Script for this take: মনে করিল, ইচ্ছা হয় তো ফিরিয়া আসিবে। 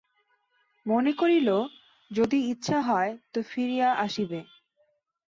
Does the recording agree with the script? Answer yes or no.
no